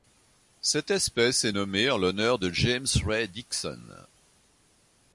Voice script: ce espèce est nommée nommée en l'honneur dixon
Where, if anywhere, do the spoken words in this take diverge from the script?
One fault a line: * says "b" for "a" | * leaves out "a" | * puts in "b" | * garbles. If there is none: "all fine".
* says "cette" for "ce"
* leaves out "nommée"
* puts in "de james ray"